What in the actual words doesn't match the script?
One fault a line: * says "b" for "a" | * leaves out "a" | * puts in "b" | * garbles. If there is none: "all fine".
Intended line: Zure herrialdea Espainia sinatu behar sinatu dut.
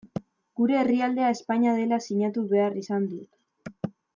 * says "Gure" for "Zure"
* puts in "dela"
* says "izan" for "sinatu"